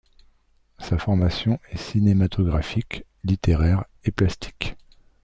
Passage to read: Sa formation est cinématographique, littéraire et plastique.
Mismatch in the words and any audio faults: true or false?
false